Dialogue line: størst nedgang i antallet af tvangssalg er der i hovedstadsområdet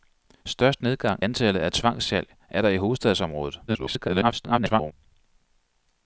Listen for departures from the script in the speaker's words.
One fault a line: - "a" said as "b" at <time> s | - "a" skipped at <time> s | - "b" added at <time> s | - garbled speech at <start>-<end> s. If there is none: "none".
- "i" skipped at 1.2 s
- garbled speech at 3.7-4.9 s